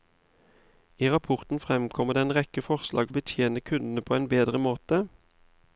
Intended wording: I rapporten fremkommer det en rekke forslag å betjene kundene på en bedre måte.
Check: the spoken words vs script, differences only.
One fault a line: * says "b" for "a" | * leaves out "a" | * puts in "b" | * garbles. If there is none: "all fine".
all fine